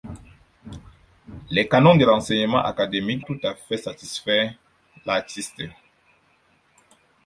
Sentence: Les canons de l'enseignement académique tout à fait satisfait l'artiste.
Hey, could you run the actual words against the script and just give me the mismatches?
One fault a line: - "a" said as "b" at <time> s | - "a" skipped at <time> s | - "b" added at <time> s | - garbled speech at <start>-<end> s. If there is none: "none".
none